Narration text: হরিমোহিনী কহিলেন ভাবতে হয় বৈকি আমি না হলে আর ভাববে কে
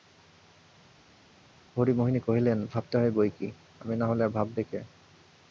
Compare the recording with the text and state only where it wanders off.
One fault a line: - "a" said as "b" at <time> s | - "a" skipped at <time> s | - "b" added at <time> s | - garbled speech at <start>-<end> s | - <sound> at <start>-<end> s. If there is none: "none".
none